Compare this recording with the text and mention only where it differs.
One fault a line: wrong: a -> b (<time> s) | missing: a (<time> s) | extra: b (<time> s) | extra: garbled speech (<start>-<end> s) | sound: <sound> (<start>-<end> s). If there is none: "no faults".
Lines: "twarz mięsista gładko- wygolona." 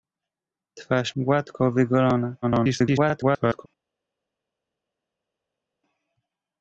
missing: mięsista (1.1 s)
extra: garbled speech (2.4-3.7 s)